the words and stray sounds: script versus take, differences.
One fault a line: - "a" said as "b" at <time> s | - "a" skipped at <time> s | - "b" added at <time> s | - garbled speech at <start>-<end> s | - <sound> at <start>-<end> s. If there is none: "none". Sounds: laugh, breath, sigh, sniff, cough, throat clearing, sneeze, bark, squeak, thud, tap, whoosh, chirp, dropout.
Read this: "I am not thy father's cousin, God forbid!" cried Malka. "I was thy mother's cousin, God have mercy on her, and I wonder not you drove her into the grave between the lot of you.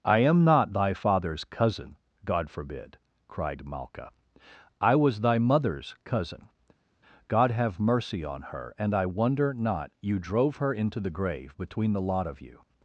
none